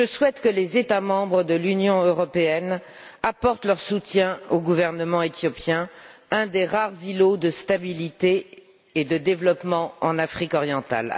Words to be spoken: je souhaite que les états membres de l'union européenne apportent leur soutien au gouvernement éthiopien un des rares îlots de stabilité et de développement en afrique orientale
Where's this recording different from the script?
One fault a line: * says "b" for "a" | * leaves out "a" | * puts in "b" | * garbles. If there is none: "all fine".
all fine